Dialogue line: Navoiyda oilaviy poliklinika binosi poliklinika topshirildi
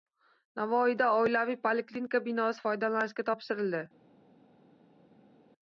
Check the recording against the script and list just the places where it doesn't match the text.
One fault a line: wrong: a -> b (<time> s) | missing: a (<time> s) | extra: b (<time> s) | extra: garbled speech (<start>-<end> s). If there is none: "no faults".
wrong: poliklinika -> foydalanishga (2.7 s)